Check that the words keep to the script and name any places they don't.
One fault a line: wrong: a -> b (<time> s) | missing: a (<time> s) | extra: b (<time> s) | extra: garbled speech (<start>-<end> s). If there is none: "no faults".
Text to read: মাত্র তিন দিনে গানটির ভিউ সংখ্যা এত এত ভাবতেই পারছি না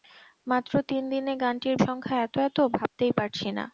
missing: ভিউ (1.8 s)